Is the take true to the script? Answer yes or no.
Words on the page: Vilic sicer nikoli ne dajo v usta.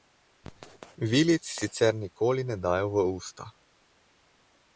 yes